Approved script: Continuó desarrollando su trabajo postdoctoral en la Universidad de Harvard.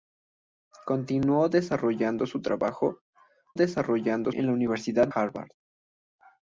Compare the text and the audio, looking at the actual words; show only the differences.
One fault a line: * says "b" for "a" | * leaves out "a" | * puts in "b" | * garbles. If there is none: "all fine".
* says "desarrollando" for "postdoctoral"
* leaves out "de"